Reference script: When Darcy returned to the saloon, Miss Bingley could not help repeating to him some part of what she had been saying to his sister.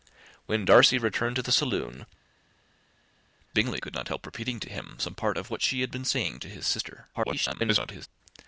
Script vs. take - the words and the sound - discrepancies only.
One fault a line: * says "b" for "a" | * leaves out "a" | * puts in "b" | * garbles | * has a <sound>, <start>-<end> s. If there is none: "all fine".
* leaves out "Miss"
* garbles